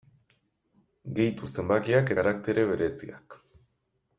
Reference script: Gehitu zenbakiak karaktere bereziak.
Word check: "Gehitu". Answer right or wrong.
right